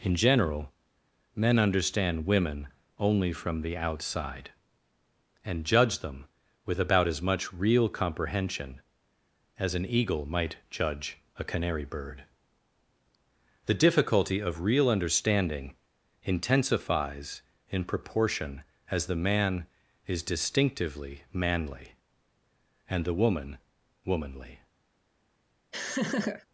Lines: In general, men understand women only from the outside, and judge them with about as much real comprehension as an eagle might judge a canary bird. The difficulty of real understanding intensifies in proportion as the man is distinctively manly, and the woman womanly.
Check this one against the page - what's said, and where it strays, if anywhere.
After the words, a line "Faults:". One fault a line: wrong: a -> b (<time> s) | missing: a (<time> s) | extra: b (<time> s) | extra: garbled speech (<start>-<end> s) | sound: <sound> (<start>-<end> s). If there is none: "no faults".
In general, men understand women only from the outside, and judge them with about as much real comprehension as an eagle might judge a canary bird. The difficulty of real understanding intensifies in proportion as the man is distinctively manly, and the woman womanly.
Faults:
sound: laugh (25.7-26.5 s)